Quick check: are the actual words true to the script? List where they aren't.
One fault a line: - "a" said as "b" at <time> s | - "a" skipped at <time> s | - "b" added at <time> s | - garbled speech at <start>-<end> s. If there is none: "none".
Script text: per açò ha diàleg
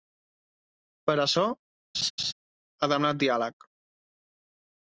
- "demanat" added at 2.9 s